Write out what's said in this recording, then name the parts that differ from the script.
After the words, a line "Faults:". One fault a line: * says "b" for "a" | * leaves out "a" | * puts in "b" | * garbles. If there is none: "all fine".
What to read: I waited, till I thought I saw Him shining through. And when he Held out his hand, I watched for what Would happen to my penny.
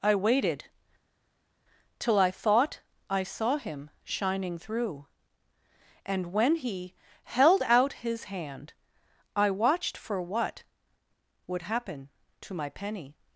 I waited, till I thought I saw Him shining through. And when he Held out his hand, I watched for what Would happen to my penny.
Faults:
all fine